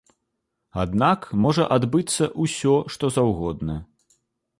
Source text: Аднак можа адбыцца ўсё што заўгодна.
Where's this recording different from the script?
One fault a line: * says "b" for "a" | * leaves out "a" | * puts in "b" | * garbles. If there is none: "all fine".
all fine